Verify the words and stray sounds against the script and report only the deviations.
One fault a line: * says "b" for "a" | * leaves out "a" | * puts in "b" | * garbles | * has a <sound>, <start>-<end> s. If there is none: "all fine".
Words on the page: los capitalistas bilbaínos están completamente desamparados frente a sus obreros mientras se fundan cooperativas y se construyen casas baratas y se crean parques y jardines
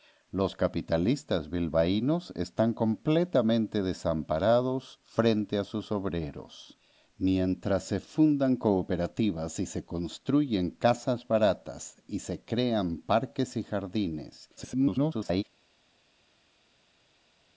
* garbles